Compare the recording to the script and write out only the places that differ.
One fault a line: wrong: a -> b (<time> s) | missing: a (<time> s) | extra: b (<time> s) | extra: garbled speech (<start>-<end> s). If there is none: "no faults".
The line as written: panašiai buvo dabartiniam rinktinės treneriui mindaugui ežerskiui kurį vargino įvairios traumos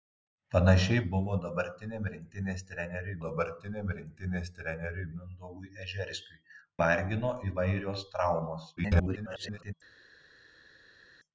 extra: dabartiniam rinktinės treneriui (3.2 s)
missing: kurį (6.4 s)
extra: garbled speech (8.8-9.7 s)